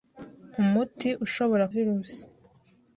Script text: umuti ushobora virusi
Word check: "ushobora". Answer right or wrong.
right